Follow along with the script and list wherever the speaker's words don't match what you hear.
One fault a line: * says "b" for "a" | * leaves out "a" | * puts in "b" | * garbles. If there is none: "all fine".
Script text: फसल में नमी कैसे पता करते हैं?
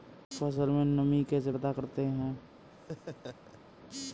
all fine